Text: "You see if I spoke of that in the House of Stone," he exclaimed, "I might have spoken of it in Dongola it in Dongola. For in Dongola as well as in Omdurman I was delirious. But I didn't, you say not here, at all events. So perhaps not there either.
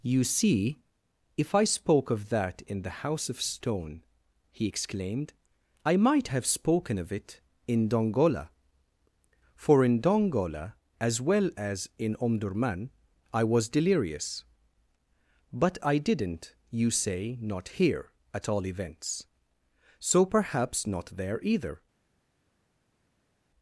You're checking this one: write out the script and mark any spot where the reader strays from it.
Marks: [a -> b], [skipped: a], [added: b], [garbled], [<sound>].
"You see if I spoke of that in the House of Stone," he exclaimed, "I might have spoken of it in Dongola [skipped: it in Dongola.] For in Dongola as well as in Omdurman I was delirious. But I didn't, you say not here, at all events. So perhaps not there either.